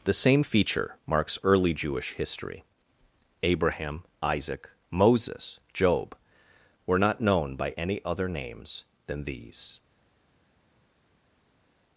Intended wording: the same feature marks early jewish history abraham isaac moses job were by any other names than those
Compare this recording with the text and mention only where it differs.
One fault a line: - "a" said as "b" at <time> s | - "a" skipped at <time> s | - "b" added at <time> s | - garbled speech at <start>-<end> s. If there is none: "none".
- "not known" added at 7.0 s
- "those" said as "these" at 9.2 s